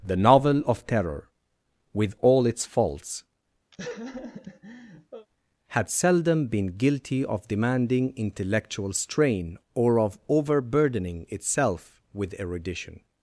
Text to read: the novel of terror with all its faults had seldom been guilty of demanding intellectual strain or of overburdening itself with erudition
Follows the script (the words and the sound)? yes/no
no